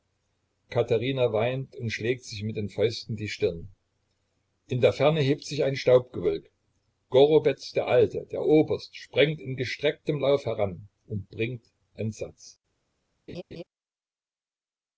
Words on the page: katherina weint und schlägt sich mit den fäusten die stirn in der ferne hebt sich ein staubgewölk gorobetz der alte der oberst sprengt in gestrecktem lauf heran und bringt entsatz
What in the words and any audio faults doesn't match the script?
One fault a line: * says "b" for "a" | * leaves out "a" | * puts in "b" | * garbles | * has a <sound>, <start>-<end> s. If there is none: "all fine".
* has a laugh, 13.3-13.6 s